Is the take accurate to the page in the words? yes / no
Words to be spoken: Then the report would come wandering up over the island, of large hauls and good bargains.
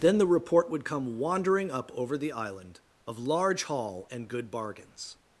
no